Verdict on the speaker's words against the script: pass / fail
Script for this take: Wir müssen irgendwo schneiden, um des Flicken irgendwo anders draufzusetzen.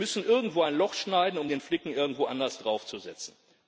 fail